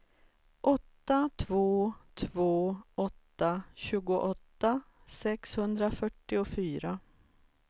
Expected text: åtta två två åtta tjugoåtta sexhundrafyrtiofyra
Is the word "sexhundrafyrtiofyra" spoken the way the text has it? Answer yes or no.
yes